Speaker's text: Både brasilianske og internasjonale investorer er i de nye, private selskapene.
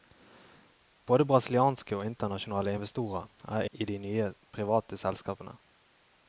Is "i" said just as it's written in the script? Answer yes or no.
yes